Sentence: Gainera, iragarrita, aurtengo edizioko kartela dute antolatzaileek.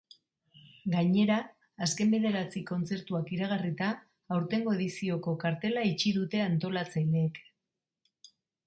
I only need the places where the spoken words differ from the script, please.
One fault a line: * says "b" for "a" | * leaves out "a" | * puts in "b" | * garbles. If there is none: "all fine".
* puts in "azken bederatzi kontzertuak"
* puts in "itxi"